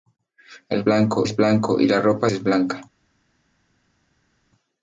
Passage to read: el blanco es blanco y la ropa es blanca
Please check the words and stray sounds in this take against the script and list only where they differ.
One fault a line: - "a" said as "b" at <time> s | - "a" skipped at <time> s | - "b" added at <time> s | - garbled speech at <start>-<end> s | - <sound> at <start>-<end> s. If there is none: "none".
none